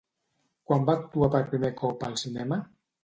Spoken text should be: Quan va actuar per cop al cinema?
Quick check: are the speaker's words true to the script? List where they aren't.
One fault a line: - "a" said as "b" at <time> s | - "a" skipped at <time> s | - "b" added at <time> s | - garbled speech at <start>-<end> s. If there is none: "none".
- "primer" added at 1.6 s